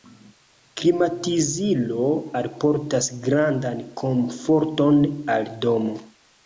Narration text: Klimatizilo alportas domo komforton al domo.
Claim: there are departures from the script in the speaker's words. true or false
true